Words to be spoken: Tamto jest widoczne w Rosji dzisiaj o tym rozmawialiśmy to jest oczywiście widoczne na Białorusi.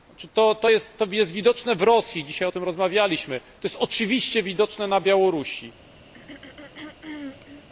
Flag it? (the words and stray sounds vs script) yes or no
yes